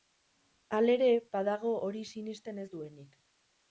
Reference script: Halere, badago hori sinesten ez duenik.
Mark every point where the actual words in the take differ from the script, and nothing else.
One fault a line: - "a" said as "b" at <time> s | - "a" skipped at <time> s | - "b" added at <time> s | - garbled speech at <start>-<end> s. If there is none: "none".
none